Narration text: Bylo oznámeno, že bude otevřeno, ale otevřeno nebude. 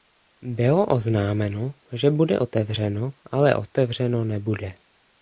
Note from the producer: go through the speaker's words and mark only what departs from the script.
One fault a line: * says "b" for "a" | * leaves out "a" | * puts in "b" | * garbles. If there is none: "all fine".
all fine